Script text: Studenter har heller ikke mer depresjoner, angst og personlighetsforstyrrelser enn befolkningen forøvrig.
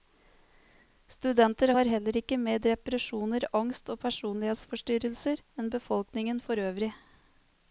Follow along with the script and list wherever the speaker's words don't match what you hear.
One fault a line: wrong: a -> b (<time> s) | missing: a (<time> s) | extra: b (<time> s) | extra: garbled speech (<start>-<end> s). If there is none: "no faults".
no faults